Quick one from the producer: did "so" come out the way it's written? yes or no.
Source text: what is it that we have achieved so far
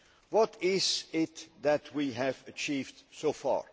yes